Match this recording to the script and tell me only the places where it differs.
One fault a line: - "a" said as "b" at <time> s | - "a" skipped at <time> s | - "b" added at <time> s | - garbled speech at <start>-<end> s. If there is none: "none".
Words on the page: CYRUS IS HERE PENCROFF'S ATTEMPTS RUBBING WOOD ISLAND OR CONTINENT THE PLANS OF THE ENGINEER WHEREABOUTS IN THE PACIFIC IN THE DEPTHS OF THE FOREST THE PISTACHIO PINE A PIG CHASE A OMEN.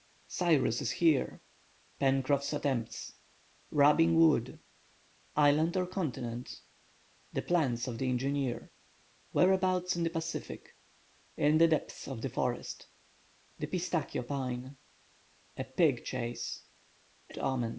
none